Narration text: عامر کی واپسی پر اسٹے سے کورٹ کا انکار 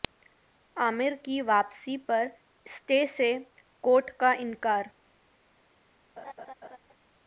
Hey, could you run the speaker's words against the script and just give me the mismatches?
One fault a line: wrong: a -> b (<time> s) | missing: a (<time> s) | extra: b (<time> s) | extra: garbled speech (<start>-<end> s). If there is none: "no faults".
no faults